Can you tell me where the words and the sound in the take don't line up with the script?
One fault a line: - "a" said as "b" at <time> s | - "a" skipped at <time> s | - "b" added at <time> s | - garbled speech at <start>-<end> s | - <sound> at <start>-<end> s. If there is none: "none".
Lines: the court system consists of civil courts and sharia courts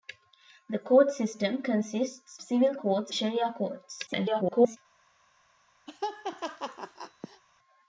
- "of" skipped at 2.4 s
- "and" skipped at 3.1 s
- garbled speech at 4.1-4.8 s
- laugh at 5.9-7.4 s